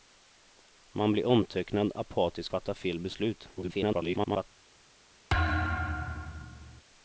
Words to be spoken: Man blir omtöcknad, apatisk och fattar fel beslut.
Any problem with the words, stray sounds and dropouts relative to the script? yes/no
yes